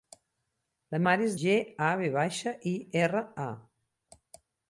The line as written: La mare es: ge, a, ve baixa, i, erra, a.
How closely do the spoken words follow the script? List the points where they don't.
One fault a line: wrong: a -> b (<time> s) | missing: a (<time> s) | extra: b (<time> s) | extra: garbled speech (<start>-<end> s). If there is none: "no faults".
no faults